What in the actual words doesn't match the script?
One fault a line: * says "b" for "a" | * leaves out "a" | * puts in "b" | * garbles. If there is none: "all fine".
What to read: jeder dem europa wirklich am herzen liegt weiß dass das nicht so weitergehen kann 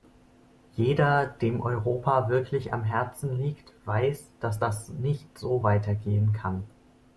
all fine